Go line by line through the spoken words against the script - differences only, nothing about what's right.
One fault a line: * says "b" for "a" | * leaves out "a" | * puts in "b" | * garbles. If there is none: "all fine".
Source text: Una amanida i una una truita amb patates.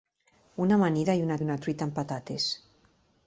all fine